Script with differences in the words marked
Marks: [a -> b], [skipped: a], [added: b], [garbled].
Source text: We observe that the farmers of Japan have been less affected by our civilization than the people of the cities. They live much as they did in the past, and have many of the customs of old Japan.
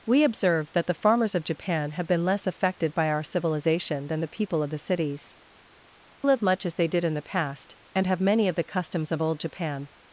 We observe that the farmers of Japan have been less affected by our civilization than the people of the cities. [skipped: They] live much as they did in the past, and have many of the customs of old Japan.